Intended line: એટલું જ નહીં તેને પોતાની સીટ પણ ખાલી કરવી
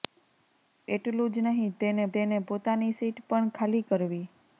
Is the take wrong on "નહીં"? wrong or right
right